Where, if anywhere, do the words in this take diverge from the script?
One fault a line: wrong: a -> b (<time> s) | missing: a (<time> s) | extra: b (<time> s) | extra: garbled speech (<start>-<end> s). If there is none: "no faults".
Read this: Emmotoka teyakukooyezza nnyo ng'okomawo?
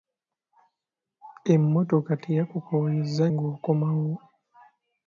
missing: nnyo (3.3 s)